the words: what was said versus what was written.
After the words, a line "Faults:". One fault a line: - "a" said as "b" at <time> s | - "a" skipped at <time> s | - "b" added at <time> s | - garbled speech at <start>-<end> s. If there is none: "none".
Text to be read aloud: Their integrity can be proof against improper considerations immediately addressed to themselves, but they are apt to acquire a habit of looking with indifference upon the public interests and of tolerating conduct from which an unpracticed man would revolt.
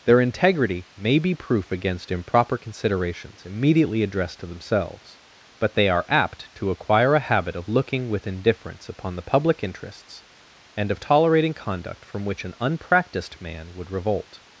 Their integrity may be proof against improper considerations immediately addressed to themselves, but they are apt to acquire a habit of looking with indifference upon the public interests and of tolerating conduct from which an unpracticed man would revolt.
Faults:
- "can" said as "may" at 0.9 s